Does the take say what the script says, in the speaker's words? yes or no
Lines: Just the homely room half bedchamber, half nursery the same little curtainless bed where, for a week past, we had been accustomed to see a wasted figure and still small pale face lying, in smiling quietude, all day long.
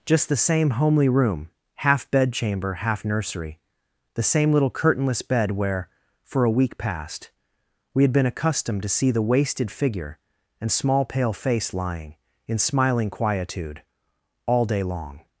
no